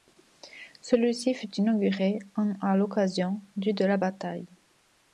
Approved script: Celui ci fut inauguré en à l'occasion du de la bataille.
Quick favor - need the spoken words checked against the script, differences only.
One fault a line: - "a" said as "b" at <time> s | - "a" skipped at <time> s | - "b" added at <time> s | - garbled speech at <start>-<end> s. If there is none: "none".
none